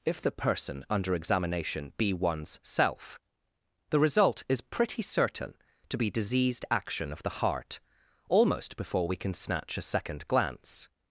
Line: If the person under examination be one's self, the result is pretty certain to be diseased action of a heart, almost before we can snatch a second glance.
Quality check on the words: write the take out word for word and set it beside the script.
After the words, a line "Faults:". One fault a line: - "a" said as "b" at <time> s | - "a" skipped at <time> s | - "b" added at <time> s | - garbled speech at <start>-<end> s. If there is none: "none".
If the person under examination be one's self, the result is pretty certain to be diseased action of the heart, almost before we can snatch a second glance.
Faults:
- "a" said as "the" at 7.2 s